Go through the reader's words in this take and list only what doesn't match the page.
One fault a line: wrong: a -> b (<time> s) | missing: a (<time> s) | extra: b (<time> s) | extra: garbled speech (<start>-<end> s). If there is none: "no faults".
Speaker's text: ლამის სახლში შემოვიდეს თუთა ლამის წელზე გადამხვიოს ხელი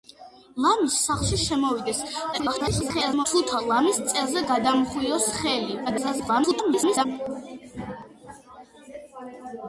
extra: garbled speech (2.3-3.3 s)
extra: garbled speech (5.9-7.1 s)